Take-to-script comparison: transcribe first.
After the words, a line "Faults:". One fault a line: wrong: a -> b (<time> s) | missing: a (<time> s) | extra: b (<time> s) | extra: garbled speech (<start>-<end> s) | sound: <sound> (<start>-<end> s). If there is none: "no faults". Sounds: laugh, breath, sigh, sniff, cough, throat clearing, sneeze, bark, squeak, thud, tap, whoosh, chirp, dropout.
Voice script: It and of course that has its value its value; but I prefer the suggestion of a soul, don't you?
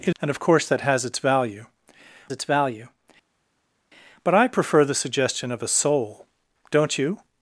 It and of course that has its value its value; but I prefer the suggestion of a soul, don't you?
Faults:
no faults